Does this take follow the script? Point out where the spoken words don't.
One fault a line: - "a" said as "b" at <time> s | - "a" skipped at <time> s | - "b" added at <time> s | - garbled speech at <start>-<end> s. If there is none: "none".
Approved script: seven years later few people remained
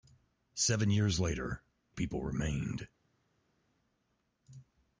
- "few" skipped at 1.6 s